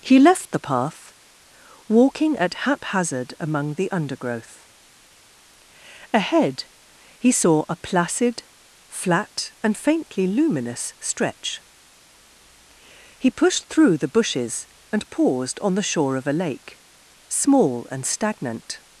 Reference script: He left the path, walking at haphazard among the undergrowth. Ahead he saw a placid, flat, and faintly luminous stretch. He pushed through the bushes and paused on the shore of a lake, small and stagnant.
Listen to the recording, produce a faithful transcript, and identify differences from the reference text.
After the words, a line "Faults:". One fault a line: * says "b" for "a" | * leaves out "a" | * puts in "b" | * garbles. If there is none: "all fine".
He left the path, walking at haphazard among the undergrowth. Ahead he saw a placid, flat, and faintly luminous stretch. He pushed through the bushes and paused on the shore of a lake, small and stagnant.
Faults:
all fine